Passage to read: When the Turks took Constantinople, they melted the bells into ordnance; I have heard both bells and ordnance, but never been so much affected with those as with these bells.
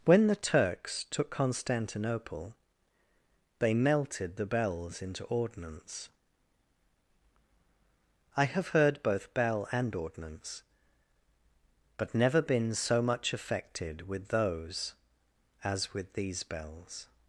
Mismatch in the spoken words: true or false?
true